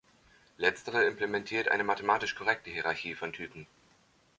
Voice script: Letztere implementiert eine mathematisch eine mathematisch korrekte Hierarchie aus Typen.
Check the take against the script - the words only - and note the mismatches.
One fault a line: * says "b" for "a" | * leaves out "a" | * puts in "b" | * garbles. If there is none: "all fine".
* leaves out "eine mathematisch"
* says "von" for "aus"